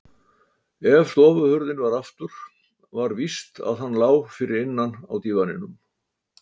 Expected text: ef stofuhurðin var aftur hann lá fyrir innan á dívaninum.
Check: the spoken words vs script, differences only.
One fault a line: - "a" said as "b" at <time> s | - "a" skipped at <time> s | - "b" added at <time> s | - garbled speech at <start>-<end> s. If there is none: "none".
- "var víst að" added at 3.0 s